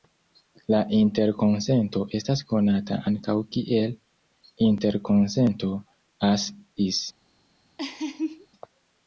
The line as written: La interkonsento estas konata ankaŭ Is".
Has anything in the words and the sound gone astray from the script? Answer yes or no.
yes